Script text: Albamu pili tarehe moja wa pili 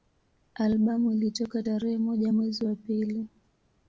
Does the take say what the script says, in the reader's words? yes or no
no